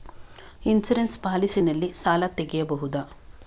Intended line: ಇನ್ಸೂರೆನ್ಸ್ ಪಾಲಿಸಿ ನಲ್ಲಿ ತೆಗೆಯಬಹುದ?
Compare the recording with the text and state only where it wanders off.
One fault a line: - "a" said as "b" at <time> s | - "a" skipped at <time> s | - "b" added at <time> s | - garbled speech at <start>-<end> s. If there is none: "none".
- "ಸಾಲ" added at 1.9 s